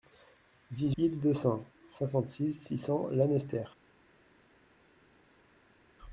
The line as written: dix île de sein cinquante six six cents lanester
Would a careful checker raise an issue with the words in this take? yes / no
no